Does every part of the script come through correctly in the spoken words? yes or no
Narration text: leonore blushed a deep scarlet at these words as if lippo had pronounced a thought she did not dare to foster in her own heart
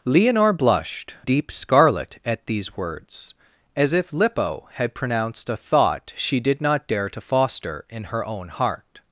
no